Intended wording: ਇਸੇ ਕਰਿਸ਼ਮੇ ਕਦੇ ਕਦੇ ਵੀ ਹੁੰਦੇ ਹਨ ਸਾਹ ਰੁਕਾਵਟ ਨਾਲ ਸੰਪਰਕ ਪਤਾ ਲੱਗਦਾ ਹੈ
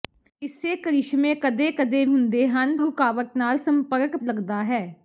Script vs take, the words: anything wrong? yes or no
yes